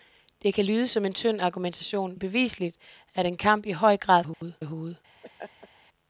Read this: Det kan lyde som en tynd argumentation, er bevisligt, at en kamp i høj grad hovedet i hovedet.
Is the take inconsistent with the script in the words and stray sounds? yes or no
yes